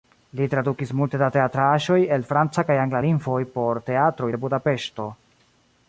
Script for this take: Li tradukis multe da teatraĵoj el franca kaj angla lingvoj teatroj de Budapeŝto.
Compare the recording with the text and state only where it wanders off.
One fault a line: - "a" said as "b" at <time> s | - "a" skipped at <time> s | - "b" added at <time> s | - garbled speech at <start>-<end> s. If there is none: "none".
- "por" added at 3.6 s